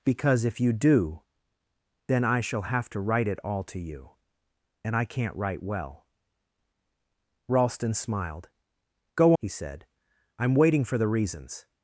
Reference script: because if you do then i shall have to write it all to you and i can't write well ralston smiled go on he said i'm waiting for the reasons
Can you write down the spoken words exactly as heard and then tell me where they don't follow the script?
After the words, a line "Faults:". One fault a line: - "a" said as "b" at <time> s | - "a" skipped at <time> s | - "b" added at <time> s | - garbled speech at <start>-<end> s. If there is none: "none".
because if you do then i shall have to write it all to you and i can't write well ralston smiled go he said i'm waiting for the reasons
Faults:
- "on" skipped at 9.3 s